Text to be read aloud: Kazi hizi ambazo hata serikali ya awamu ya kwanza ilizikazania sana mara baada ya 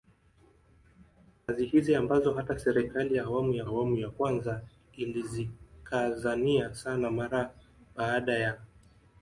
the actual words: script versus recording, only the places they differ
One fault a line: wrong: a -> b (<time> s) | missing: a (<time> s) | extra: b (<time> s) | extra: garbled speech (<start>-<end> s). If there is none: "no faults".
extra: awamu ya (3.6 s)